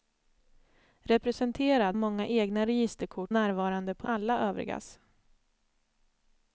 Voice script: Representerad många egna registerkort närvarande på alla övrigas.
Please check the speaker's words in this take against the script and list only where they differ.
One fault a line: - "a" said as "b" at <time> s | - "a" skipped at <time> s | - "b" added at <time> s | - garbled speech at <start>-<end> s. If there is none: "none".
none